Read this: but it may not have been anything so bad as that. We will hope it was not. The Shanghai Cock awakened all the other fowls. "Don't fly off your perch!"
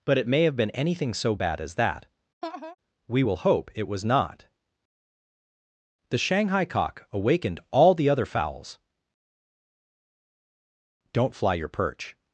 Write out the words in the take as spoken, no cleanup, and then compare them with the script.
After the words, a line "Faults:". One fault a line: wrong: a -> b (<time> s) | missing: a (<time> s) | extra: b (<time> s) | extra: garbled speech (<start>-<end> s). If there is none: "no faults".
but it may have been anything so bad as that. We will hope it was not. The Shanghai Cock awakened all the other fowls. "Don't fly your perch!"
Faults:
missing: not (0.4 s)
missing: off (11.5 s)